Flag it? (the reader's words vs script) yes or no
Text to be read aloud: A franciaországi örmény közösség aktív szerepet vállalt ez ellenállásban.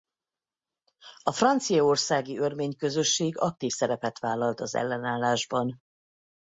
yes